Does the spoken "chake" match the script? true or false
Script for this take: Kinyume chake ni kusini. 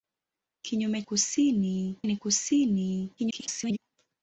false